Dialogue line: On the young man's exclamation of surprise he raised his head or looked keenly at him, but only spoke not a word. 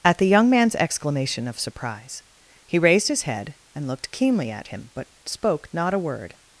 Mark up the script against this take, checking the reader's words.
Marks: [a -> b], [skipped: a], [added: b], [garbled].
[On -> At] the young man's exclamation of surprise he raised his head [or -> and] looked keenly at him, but [skipped: only] spoke not a word.